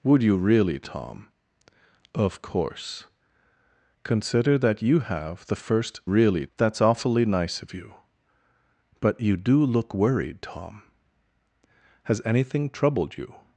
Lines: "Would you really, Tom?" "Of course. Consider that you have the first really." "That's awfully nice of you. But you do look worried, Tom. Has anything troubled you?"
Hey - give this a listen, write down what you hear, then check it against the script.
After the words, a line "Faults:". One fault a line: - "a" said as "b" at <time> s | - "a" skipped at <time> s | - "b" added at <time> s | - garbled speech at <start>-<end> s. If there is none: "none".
"Would you really, Tom?" "Of course. Consider that you have the first really." "That's awfully nice of you. But you do look worried, Tom. Has anything troubled you?"
Faults:
none